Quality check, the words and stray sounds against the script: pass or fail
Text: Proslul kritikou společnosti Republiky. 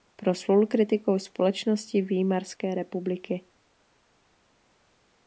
fail